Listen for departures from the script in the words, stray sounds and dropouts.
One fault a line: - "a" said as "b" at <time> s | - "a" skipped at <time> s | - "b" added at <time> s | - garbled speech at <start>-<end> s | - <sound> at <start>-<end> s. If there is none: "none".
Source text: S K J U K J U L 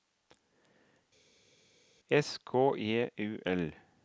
- "K J U" skipped at 3.4 s